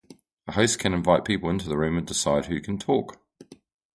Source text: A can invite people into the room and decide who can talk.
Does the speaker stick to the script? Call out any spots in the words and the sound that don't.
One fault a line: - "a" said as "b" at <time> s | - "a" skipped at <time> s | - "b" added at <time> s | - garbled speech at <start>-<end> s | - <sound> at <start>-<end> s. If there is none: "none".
- "host" added at 0.5 s